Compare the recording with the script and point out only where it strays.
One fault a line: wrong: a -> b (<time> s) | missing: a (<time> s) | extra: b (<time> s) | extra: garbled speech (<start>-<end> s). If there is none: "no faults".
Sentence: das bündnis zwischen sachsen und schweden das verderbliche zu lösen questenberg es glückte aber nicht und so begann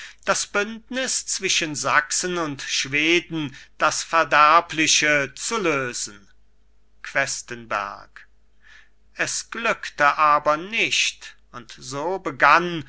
no faults